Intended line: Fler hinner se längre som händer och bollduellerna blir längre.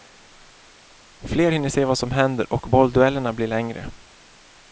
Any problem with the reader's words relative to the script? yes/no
yes